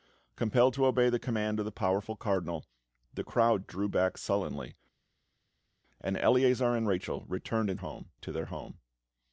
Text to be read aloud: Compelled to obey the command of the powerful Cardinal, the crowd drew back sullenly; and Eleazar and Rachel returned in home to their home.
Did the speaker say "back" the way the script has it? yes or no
yes